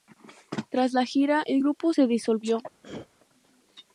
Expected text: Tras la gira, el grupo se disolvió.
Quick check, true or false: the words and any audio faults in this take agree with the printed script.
false